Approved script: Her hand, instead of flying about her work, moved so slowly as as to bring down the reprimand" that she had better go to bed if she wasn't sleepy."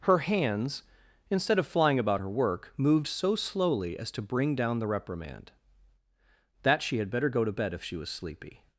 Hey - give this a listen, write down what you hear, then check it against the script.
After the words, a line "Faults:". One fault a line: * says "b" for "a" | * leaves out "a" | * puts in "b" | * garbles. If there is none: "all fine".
Her hands, instead of flying about her work, moved so slowly as to bring down the reprimand" that she had better go to bed if she was sleepy."
Faults:
* says "hands" for "hand"
* leaves out "as"
* says "was" for "wasn't"